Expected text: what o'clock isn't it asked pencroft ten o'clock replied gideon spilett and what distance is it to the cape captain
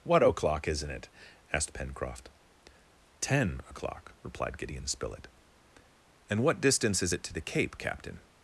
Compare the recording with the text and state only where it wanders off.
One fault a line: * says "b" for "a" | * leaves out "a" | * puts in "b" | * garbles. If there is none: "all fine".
all fine